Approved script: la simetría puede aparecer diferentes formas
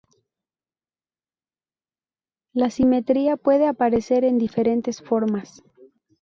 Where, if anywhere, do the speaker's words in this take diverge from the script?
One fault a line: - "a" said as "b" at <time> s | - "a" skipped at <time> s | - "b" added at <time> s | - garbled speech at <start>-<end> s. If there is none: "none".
- "en" added at 4.2 s